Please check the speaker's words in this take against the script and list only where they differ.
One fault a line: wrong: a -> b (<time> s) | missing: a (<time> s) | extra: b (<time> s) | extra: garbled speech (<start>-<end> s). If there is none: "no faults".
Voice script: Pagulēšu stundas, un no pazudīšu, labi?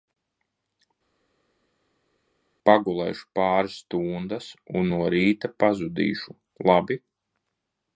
extra: pāris (3.4 s)
extra: rīta (5.2 s)